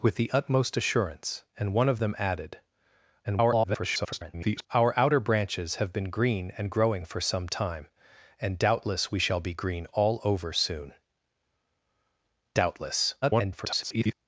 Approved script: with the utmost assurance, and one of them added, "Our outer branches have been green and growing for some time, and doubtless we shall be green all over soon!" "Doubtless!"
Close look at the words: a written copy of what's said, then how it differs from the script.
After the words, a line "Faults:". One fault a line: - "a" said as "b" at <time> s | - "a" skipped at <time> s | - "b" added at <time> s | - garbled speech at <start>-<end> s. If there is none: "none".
with the utmost assurance, and one of them added, [garbled] "Our outer branches have been green and growing for some time, and doubtless we shall be green all over soon!" "Doubtless!" [garbled]
Faults:
- garbled speech at 3.2-4.7 s
- garbled speech at 13.2-14.1 s